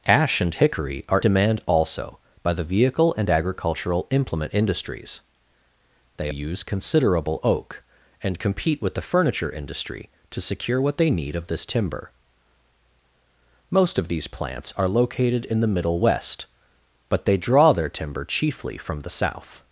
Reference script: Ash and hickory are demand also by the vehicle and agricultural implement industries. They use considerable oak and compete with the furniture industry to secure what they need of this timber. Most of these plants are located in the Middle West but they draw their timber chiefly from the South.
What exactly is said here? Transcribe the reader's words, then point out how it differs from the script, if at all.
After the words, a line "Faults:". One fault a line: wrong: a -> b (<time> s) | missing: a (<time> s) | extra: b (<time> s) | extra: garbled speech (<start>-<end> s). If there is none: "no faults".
Ash and hickory are demand also by the vehicle and agricultural implement industries. They use considerable oak and compete with the furniture industry to secure what they need of this timber. Most of these plants are located in the Middle West but they draw their timber chiefly from the South.
Faults:
no faults